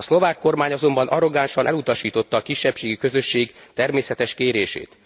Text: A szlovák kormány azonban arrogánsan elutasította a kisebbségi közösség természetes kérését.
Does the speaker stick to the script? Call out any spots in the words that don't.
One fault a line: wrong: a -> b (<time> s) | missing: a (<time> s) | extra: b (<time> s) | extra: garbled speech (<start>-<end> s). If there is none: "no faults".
no faults